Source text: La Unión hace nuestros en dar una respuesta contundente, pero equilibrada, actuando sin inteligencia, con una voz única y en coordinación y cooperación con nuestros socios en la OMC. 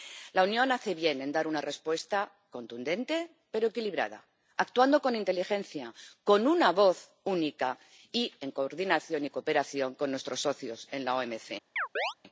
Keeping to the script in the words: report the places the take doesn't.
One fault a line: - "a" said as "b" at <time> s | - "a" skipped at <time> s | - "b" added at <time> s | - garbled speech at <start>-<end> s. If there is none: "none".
- "nuestros" said as "bien" at 0.9 s
- "sin" said as "con" at 5.0 s